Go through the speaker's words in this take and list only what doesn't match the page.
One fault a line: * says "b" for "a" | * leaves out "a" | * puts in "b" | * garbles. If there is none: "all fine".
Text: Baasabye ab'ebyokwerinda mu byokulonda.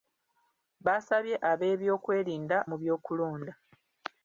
all fine